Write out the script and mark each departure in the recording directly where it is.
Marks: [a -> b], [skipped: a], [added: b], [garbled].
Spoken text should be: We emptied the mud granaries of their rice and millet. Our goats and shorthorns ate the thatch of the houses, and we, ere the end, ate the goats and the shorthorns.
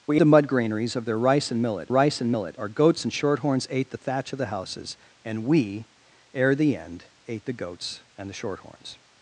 We [skipped: emptied] the mud granaries of their rice and millet. [added: rice and millet] Our goats and shorthorns ate the thatch of the houses, and we, ere the end, ate the goats and the shorthorns.